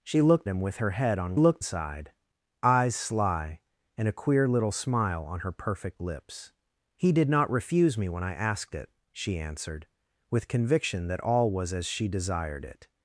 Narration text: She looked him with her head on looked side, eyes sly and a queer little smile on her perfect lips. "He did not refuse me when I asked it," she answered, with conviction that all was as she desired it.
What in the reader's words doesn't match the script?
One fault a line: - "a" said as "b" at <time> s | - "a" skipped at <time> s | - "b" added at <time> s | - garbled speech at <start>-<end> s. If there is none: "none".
none